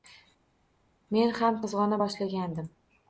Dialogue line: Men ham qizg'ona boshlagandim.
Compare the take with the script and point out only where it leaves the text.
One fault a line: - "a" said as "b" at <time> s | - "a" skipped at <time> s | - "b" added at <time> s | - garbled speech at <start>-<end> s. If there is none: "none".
none